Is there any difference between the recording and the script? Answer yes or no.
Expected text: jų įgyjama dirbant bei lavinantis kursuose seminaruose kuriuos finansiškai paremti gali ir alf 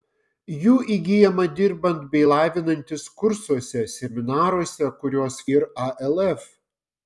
yes